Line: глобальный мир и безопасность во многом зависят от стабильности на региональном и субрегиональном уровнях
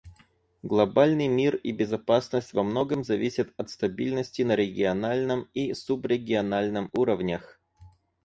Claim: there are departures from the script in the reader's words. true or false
false